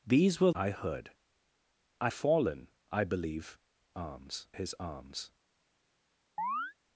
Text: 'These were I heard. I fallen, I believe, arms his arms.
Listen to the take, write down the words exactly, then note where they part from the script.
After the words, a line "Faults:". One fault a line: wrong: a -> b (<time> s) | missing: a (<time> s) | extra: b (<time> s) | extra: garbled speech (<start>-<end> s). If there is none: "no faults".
'These were I heard. I fallen, I believe, arms his arms.
Faults:
no faults